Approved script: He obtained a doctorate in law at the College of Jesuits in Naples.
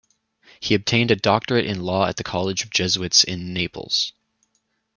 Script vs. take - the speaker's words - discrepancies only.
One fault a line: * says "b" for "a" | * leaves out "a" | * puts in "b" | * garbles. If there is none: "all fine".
all fine